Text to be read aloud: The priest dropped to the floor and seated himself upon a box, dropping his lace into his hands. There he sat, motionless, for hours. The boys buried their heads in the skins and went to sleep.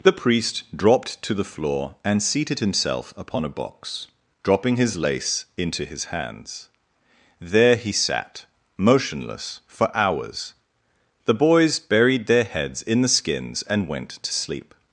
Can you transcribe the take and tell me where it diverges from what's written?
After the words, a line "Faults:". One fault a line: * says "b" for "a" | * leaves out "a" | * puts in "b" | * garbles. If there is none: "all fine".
The priest dropped to the floor and seated himself upon a box, dropping his lace into his hands. There he sat, motionless, for hours. The boys buried their heads in the skins and went to sleep.
Faults:
all fine